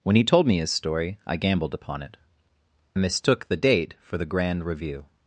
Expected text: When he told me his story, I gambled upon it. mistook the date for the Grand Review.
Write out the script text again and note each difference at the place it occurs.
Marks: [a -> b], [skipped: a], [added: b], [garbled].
When he told me his story, I gambled upon it. mistook the date for the Grand Review.